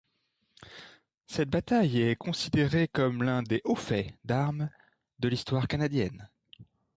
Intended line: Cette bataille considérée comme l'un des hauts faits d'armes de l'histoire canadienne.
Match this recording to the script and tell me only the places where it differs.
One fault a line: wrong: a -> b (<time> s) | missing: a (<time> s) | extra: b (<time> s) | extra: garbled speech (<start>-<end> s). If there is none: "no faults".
extra: est (2.0 s)